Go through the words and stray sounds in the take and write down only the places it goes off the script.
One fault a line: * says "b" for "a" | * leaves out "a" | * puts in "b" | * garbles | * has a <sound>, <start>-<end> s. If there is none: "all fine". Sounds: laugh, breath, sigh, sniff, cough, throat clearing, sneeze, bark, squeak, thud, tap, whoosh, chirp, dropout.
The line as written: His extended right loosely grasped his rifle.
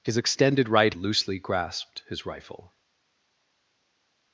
all fine